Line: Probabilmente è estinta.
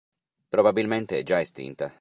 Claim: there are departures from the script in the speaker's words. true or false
true